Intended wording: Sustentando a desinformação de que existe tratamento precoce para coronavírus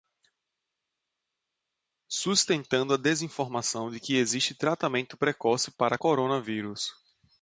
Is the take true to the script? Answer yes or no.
yes